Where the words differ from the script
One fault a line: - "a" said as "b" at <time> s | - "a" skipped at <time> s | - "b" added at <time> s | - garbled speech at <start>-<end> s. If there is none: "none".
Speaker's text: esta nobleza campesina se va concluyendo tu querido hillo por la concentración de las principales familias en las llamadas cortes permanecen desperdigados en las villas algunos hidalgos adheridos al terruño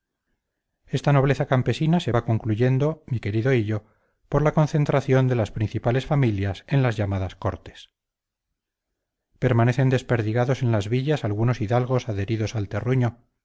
- "tu" said as "mi" at 3.1 s